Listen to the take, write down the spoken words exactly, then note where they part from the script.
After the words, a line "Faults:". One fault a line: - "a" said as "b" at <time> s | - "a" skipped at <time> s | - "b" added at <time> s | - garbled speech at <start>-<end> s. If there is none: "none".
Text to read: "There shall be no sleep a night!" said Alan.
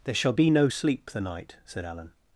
"There shall be no sleep the night!" said Alan.
Faults:
- "a" said as "the" at 1.1 s